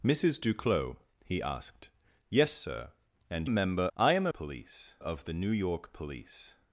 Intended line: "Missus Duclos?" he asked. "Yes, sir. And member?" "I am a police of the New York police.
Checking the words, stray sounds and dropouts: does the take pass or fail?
pass